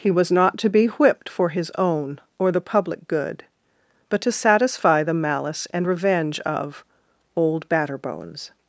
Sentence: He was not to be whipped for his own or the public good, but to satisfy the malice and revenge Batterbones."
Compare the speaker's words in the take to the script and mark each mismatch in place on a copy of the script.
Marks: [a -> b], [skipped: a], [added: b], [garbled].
He was not to be whipped for his own or the public good, but to satisfy the malice and revenge [added: of Old] Batterbones."